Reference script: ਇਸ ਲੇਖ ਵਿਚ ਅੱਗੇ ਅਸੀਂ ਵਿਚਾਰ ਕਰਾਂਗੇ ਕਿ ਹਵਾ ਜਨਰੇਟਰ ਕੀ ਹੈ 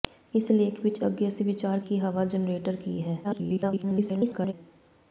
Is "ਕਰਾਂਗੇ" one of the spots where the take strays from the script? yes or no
yes